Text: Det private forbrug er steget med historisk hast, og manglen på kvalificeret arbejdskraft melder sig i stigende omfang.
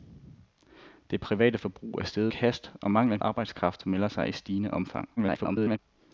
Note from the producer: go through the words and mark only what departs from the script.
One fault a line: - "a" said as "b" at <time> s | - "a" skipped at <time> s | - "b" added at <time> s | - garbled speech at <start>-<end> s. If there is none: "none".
- "med historisk" skipped at 2.3 s
- "på kvalificeret" skipped at 3.2 s
- garbled speech at 5.2-5.8 s